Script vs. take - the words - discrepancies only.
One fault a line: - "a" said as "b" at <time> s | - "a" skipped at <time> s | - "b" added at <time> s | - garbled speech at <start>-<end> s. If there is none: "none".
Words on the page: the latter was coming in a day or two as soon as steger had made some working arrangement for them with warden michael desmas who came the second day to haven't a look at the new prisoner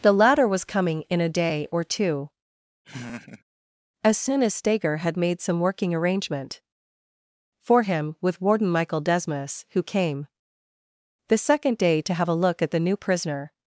- "them" said as "him" at 7.8 s
- "haven't" said as "have" at 12.1 s